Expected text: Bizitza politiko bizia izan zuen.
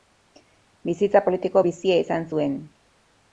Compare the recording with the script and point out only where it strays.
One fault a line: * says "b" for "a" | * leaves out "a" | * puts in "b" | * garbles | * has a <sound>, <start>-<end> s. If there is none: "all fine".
all fine